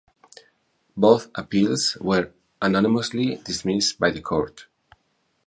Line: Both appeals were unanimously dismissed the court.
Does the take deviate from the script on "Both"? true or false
false